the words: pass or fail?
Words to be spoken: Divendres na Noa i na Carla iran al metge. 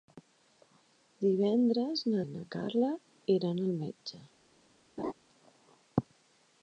fail